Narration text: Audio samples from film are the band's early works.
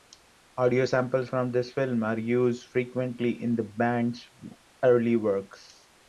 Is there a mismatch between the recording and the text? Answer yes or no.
yes